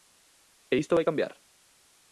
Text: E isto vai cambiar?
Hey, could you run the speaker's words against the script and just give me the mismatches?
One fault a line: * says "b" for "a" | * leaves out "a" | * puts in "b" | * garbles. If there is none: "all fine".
all fine